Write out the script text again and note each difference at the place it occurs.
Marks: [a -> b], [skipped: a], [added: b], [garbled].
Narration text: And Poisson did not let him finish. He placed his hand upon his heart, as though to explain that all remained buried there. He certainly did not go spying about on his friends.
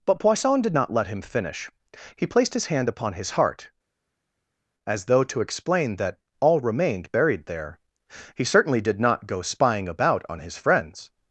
[And -> But] Poisson did not let him finish. He placed his hand upon his heart, as though to explain that all remained buried there. He certainly did not go spying about on his friends.